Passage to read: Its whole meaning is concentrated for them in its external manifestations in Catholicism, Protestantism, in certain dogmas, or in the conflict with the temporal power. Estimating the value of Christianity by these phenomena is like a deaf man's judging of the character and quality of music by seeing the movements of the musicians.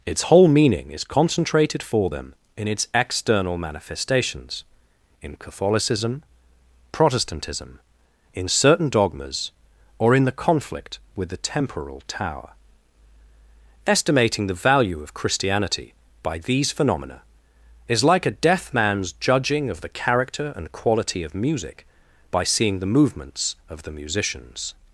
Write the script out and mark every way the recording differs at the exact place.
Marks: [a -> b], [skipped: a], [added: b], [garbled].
Its whole meaning is concentrated for them in its external manifestations in Catholicism, Protestantism, in certain dogmas, or in the conflict with the temporal [power. -> tower] Estimating the value of Christianity by these phenomena is like a deaf man's judging of the character and quality of music by seeing the movements of the musicians.